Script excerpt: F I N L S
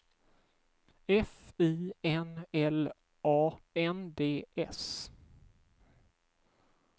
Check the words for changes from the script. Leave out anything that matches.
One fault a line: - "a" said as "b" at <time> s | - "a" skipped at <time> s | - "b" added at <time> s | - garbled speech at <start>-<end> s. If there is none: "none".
- "A N D" added at 3.2 s